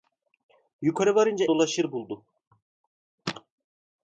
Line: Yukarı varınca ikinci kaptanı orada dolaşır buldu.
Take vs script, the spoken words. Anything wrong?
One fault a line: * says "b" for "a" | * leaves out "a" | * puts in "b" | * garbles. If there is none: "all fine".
* leaves out "ikinci kaptanı orada"